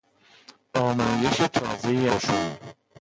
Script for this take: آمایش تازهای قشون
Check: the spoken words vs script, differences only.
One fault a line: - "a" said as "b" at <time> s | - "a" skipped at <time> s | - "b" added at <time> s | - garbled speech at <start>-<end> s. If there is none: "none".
none